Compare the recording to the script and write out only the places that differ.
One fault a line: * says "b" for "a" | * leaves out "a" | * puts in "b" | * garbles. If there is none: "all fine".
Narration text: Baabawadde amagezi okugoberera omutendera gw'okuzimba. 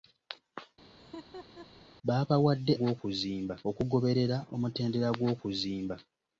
* says "gw'okuzimba" for "amagezi"